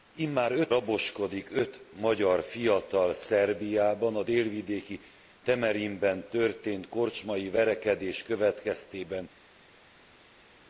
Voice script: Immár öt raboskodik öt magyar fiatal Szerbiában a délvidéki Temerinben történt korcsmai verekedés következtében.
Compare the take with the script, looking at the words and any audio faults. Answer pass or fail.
pass